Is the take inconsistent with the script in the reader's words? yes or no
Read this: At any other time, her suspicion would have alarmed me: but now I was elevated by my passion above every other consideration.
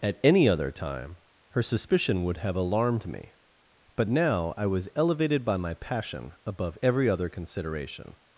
no